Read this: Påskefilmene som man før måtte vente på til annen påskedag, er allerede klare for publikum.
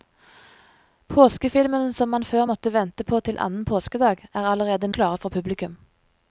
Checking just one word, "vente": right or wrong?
right